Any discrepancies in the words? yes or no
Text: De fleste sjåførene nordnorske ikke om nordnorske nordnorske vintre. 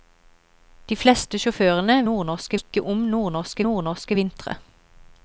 no